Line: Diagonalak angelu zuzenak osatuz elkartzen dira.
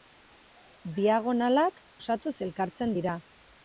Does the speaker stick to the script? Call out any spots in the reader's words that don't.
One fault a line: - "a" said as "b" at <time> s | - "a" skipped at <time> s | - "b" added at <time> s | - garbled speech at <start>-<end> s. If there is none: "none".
- "angelu zuzenak" skipped at 1.8 s